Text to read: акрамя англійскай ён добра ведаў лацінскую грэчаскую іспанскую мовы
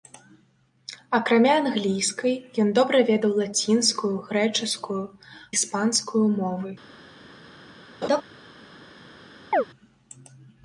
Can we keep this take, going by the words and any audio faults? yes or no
no